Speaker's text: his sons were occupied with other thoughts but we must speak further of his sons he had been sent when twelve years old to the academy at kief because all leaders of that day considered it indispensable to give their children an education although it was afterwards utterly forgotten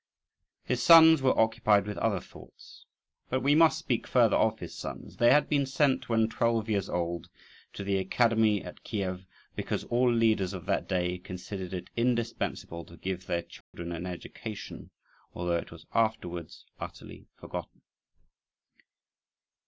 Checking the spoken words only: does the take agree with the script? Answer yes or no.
no